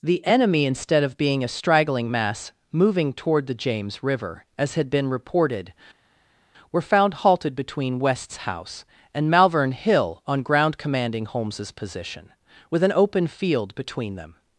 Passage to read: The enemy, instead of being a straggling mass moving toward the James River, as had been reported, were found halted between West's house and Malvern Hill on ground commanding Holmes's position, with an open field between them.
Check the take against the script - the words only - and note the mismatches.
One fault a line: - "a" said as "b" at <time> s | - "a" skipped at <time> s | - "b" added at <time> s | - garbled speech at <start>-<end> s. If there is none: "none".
none